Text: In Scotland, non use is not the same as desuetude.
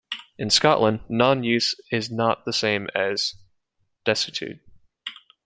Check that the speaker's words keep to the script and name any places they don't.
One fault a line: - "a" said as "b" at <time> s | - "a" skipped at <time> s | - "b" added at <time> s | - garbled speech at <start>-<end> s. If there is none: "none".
none